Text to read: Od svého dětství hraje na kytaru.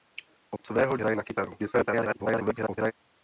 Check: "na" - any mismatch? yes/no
no